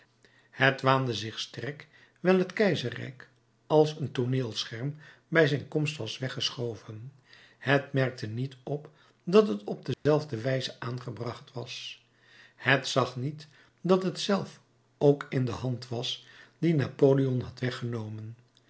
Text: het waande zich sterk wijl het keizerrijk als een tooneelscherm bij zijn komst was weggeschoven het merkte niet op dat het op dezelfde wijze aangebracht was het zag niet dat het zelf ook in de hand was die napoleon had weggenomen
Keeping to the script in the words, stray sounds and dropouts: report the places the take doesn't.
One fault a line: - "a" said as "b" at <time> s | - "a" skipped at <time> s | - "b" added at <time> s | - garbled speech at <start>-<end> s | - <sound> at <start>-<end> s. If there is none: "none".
- dropout at 9.9-10.1 s